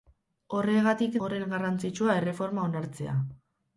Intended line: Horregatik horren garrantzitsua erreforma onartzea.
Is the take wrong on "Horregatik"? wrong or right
right